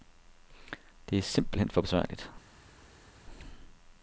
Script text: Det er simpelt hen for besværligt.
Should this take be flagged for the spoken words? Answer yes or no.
no